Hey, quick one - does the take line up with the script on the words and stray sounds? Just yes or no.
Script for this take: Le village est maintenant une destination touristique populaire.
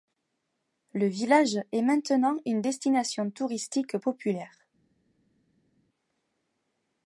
yes